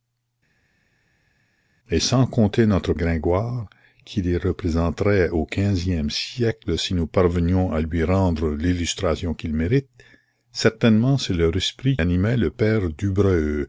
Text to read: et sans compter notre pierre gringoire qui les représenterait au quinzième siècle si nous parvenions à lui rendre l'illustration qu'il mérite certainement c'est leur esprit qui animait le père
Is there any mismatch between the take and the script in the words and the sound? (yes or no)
yes